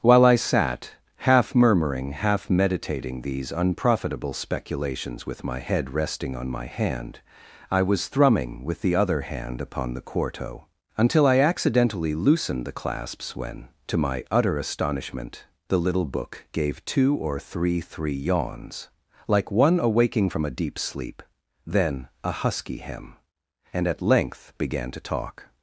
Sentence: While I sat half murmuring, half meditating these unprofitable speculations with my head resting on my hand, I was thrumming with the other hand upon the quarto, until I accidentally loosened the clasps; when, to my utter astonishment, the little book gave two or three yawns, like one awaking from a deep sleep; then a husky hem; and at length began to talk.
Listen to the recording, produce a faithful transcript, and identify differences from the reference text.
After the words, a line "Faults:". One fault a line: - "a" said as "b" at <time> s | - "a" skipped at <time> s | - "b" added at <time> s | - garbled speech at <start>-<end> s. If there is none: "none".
While I sat half murmuring, half meditating these unprofitable speculations with my head resting on my hand, I was thrumming with the other hand upon the quarto, until I accidentally loosened the clasps; when, to my utter astonishment, the little book gave two or three three yawns, like one awaking from a deep sleep; then a husky hem; and at length began to talk.
Faults:
- "three" added at 17.8 s